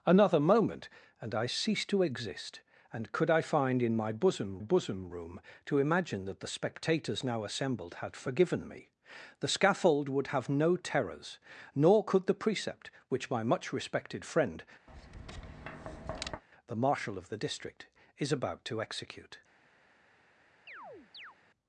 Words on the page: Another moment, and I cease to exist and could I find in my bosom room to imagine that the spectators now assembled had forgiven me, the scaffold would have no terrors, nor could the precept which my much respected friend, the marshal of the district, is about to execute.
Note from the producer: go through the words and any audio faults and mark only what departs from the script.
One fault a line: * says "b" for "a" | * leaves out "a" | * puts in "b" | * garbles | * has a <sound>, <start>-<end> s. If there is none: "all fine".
* puts in "bosom"
* has a tap, 14.9-16.4 s
* has a chirp, 20.7-21.4 s